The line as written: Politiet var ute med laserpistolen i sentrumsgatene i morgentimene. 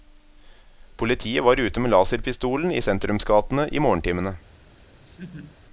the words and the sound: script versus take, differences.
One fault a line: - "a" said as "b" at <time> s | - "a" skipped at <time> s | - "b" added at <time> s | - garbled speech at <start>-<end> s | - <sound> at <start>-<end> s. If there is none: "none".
- laugh at 5.1-5.6 s